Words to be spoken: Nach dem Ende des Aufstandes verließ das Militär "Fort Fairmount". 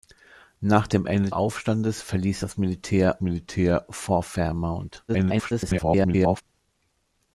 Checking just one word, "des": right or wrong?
wrong